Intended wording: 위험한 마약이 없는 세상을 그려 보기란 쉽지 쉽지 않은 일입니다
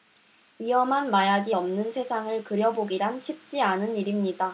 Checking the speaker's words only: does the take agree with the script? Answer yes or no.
no